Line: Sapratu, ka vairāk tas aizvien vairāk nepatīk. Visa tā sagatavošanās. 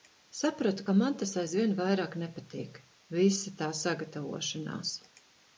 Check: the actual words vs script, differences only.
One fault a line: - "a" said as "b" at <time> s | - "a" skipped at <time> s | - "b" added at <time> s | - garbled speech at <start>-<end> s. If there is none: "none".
- "vairāk" said as "man" at 1.0 s